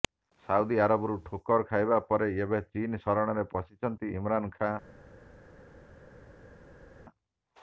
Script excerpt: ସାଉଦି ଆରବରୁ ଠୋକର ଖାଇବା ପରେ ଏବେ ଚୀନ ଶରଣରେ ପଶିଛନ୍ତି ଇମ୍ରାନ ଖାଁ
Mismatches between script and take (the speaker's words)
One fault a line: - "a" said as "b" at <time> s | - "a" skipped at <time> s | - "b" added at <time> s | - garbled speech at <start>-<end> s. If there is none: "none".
none